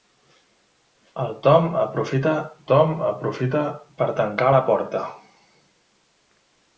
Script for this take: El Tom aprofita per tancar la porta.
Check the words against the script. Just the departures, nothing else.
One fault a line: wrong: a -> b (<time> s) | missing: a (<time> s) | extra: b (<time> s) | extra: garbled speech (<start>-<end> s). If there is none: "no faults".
extra: Tom aprofita (2.7 s)